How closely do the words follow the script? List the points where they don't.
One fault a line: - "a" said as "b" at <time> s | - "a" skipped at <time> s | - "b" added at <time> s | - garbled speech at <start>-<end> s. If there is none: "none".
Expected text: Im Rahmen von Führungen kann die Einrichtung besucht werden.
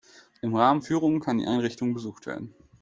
- "von" skipped at 0.8 s